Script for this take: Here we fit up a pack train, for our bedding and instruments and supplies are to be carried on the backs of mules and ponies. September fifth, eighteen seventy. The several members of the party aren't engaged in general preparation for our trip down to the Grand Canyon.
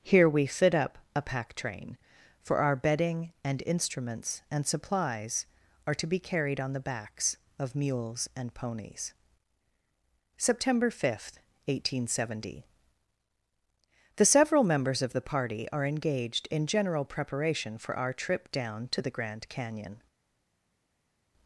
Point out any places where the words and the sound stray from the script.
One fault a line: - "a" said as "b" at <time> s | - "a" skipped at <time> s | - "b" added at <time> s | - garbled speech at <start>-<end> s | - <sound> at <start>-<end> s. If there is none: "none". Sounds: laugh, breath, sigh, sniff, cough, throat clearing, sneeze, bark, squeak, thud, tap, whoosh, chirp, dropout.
- "aren't" said as "are" at 15.7 s